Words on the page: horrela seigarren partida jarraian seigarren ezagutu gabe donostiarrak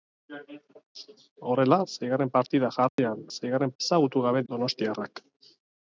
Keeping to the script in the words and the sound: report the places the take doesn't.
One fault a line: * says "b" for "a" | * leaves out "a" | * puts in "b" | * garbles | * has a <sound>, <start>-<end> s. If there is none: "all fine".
* has a dropout, 2.9-3.0 s